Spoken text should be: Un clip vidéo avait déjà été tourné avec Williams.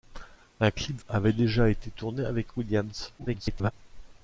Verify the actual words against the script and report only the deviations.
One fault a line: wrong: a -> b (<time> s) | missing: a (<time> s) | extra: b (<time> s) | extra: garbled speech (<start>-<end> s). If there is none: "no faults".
missing: vidéo (1.0 s)
extra: garbled speech (3.2-3.7 s)